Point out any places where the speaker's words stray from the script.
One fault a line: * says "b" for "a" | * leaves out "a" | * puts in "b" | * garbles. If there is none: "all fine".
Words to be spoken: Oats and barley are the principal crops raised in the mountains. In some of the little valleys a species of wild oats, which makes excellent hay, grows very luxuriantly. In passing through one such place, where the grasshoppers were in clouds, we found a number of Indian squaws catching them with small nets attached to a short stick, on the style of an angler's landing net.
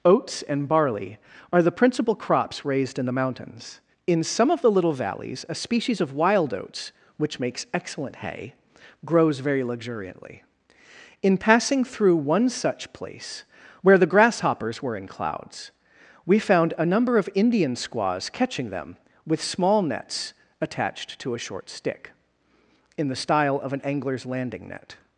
* says "in" for "on"